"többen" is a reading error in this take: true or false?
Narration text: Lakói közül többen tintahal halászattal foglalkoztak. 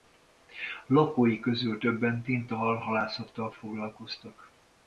false